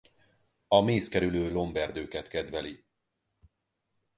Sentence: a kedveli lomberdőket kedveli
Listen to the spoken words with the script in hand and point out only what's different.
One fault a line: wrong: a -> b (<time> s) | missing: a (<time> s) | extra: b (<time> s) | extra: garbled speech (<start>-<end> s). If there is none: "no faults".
wrong: kedveli -> mészkerülő (0.8 s)